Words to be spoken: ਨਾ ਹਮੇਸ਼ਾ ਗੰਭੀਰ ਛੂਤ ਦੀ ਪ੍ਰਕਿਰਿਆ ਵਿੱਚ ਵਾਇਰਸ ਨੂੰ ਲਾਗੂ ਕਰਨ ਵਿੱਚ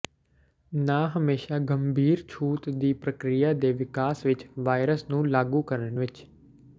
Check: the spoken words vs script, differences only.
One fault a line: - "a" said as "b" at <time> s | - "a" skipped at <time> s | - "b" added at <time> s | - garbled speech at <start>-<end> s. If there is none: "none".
- "ਦੇ ਵਿਕਾਸ" added at 3.5 s